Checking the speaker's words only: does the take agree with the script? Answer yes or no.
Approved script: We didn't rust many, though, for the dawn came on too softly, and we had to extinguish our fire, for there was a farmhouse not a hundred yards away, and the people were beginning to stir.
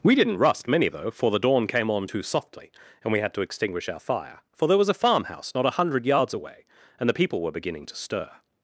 yes